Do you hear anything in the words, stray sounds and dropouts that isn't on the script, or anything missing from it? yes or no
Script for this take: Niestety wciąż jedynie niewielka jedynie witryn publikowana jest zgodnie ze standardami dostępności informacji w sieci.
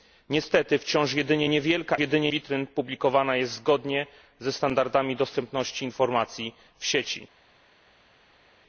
no